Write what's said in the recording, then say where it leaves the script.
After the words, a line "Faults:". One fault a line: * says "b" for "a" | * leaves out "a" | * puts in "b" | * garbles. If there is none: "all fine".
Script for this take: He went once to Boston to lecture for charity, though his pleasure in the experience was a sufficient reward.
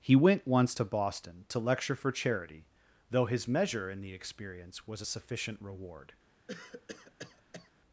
He went once to Boston to lecture for charity, though his measure in the experience was a sufficient reward.
Faults:
* says "measure" for "pleasure"